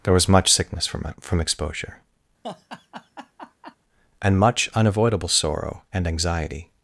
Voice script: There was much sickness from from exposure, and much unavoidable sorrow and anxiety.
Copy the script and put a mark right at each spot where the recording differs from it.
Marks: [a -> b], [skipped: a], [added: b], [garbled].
There was much sickness from from exposure, and much unavoidable sorrow and anxiety.